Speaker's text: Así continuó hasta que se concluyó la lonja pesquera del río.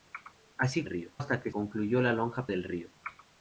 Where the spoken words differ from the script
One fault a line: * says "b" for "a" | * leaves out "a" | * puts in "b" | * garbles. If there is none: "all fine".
* says "río" for "continuó"
* leaves out "se"
* leaves out "pesquera"